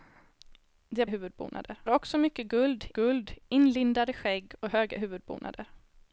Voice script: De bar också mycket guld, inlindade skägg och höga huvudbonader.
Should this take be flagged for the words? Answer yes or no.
yes